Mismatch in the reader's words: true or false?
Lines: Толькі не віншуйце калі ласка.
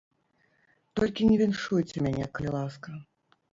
true